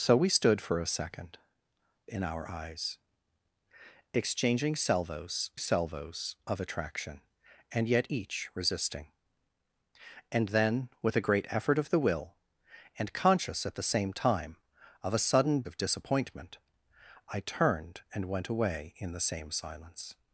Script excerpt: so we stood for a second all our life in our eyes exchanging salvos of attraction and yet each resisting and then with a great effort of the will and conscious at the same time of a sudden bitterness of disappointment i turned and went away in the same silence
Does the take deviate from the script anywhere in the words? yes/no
yes